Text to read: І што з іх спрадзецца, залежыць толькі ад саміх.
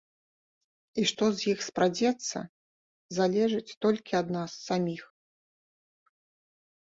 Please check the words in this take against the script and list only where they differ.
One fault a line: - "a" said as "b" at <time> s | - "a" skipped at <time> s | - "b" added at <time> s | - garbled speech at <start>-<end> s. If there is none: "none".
- "нас" added at 4.4 s